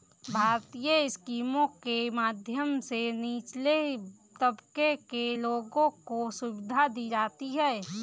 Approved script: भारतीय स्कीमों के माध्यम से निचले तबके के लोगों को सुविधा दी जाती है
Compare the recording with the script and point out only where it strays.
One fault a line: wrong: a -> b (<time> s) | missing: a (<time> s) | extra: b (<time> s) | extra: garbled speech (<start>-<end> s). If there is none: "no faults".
no faults